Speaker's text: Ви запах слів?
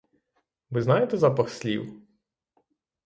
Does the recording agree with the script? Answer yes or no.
no